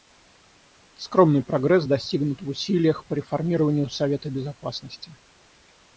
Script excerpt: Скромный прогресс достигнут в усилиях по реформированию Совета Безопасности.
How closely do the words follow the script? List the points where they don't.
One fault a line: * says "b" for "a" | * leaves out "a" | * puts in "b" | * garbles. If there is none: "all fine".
all fine